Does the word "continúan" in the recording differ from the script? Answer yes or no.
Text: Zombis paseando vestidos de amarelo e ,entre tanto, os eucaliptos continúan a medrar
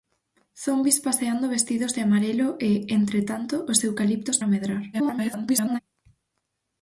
yes